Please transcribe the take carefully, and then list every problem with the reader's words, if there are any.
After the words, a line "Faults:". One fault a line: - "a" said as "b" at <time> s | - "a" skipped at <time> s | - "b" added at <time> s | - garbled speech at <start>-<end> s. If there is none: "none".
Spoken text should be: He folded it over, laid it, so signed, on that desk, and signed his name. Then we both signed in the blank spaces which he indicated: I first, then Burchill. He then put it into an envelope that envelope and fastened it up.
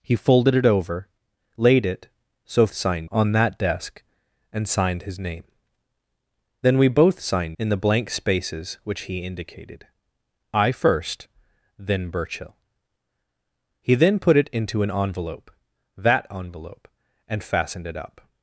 He folded it over, laid it, so signed, on that desk, and signed his name. Then we both signed in the blank spaces which he indicated: I first, then Burchill. He then put it into an envelope that envelope and fastened it up.
Faults:
none